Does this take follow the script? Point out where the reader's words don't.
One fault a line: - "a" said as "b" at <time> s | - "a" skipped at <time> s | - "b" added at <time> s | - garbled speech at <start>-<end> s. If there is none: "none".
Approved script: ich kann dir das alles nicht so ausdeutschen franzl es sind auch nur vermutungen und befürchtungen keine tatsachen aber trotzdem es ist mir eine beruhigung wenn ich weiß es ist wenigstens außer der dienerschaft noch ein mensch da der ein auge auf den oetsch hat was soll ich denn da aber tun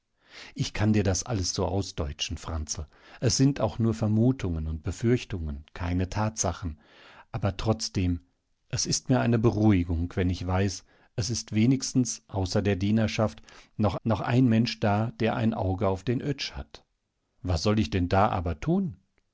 - "nicht" skipped at 1.5 s
- "noch" added at 14.0 s